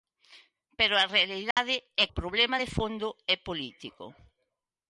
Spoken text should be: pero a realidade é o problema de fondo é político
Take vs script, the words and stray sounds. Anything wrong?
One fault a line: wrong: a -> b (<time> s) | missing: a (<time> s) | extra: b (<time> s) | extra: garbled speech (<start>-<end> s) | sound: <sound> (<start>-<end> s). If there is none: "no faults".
sound: dropout (1.5-1.6 s)